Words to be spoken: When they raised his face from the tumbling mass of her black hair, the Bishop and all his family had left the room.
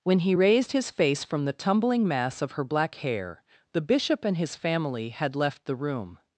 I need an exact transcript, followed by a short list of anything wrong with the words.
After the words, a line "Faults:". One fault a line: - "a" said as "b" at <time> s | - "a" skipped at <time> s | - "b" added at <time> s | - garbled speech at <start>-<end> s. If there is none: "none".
When he raised his face from the tumbling mass of her black hair, the Bishop and his family had left the room.
Faults:
- "they" said as "he" at 0.2 s
- "all" skipped at 4.4 s